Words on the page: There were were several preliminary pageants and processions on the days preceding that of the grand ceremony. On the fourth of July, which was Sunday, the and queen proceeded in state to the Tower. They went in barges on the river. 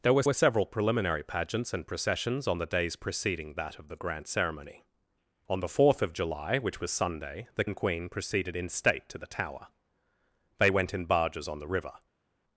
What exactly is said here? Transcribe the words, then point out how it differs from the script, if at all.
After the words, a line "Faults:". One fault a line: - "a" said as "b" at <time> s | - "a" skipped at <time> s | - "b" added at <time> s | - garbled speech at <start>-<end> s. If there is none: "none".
There were were several preliminary pageants and processions on the days preceding that of the grand ceremony. On the fourth of July, which was Sunday, the and queen proceeded in state to the Tower. They went in barges on the river.
Faults:
none